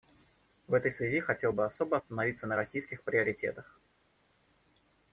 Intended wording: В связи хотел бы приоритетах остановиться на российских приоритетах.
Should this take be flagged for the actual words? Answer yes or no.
yes